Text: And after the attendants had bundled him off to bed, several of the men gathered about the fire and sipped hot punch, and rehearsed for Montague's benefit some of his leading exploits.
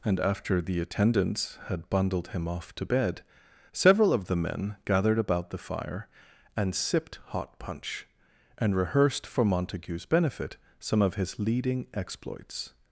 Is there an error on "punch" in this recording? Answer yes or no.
no